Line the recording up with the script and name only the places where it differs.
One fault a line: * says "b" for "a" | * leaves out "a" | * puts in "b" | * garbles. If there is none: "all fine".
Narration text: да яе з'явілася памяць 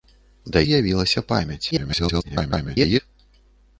* leaves out "яе"
* garbles